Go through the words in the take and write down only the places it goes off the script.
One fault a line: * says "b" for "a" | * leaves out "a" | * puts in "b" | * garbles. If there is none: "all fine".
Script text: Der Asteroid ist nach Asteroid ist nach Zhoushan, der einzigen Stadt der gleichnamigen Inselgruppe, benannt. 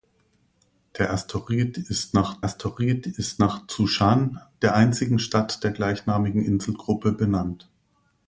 all fine